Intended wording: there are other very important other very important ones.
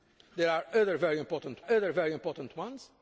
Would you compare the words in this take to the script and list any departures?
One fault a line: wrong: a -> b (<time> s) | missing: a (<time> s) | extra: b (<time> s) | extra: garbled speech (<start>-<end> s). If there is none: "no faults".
no faults